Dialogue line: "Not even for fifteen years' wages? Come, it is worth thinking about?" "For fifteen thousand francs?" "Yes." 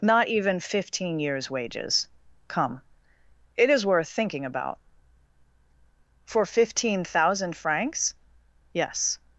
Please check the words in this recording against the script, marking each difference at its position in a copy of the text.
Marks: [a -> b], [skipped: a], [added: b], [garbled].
"Not even [skipped: for] fifteen years' wages? Come, it is worth thinking about?" "For fifteen thousand francs?" "Yes."